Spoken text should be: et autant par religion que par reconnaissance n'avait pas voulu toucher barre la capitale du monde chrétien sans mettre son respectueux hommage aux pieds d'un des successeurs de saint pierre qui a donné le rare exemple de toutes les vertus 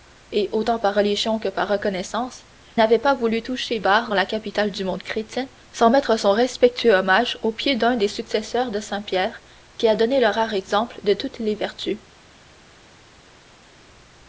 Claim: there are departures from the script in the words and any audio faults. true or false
false